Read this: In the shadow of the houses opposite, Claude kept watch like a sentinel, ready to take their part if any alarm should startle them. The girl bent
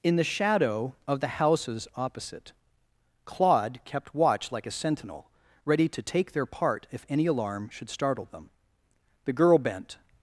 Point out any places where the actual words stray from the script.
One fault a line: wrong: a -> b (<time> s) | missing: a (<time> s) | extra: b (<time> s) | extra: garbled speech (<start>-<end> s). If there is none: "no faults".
no faults